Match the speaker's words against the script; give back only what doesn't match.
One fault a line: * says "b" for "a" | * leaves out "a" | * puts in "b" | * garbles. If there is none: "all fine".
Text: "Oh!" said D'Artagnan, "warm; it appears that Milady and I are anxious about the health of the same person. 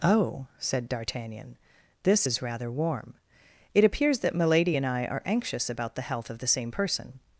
* puts in "this is rather"